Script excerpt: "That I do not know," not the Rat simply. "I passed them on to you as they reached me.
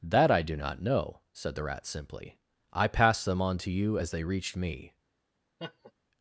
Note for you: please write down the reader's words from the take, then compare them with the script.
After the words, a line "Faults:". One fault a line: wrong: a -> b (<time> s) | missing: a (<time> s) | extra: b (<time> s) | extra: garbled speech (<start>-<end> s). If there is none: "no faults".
"That I do not know," said the Rat simply. "I passed them on to you as they reached me.
Faults:
wrong: not -> said (1.3 s)